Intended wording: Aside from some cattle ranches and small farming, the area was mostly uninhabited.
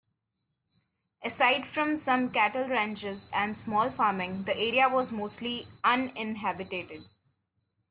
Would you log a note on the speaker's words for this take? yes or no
no